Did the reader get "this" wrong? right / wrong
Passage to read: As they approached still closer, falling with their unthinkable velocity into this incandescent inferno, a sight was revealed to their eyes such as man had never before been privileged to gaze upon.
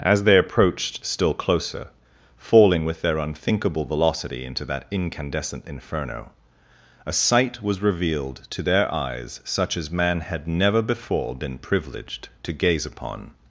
wrong